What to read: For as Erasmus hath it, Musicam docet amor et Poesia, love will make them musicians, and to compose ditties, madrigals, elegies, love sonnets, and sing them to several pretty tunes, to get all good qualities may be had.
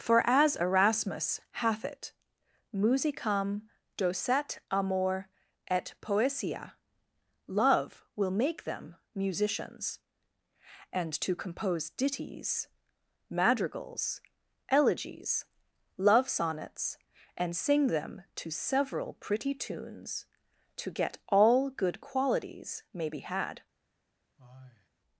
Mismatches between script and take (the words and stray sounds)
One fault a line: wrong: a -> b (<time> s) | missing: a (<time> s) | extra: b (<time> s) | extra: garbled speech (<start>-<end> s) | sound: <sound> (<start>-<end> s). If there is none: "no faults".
sound: sigh (24.4-24.9 s)